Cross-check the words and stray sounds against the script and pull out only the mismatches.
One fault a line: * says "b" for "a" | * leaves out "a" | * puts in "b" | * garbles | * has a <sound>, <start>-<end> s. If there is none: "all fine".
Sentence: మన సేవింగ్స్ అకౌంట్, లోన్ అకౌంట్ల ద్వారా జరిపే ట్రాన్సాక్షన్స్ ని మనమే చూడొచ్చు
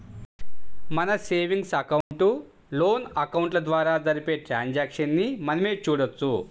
* has a dropout, 2.0-2.1 s